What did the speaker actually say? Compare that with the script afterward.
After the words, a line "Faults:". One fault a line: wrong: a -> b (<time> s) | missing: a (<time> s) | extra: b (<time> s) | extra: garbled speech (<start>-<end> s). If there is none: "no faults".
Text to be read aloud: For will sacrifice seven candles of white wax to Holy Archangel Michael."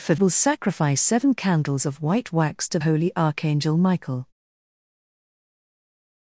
For will sacrifice seven candles of white wax to Holy Archangel Michael."
Faults:
no faults